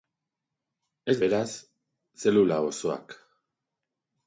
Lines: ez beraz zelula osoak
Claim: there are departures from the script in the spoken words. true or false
false